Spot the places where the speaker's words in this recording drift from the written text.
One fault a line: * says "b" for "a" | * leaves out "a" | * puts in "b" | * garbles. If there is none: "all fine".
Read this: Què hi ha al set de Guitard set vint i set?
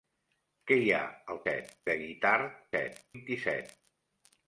all fine